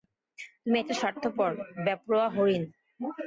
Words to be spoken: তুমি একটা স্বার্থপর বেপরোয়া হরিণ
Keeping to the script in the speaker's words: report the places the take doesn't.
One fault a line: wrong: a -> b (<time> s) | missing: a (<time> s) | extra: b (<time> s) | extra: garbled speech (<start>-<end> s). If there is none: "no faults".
no faults